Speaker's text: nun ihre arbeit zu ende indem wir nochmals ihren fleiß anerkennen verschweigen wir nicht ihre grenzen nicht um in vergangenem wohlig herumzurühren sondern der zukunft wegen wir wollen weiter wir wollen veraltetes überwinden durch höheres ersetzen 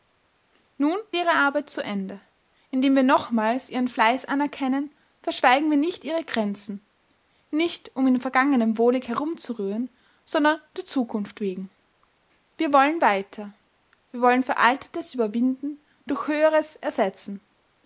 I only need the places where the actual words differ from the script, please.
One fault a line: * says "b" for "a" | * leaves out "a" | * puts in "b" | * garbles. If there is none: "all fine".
all fine